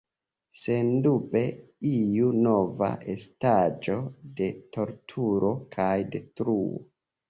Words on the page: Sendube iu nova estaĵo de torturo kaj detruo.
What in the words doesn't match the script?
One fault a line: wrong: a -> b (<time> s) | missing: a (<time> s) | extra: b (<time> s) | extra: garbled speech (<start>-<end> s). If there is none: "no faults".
no faults